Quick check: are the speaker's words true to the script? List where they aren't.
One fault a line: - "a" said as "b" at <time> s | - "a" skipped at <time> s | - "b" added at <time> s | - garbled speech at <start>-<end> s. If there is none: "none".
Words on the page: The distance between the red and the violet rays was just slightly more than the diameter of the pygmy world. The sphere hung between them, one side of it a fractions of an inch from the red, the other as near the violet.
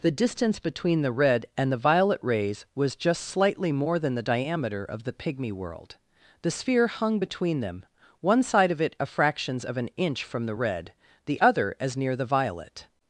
none